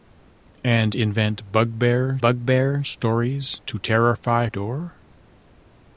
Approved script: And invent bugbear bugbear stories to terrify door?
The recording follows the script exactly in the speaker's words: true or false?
true